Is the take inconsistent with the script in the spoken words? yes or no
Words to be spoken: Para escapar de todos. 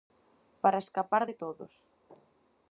no